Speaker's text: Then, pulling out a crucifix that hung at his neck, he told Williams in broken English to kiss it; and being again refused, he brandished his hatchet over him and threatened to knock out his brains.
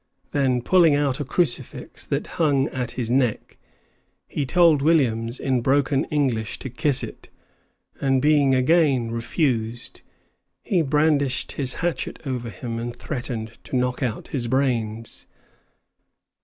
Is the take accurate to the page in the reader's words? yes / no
yes